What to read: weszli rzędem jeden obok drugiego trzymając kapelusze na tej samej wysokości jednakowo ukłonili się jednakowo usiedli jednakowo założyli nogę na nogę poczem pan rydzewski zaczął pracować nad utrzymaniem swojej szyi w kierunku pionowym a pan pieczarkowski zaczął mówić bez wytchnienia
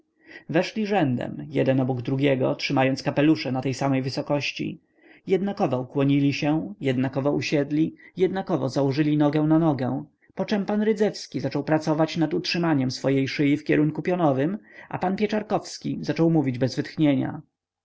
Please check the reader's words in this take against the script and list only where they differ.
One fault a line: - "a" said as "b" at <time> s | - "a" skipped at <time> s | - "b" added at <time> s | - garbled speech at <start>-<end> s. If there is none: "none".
none